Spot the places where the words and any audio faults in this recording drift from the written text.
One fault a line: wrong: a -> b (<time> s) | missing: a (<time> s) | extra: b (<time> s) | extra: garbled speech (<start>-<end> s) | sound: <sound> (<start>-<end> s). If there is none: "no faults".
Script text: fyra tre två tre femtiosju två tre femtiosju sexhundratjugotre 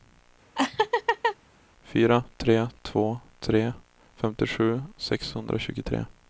sound: laugh (0.6-1.4 s)
missing: två tre femtiosju (4.8 s)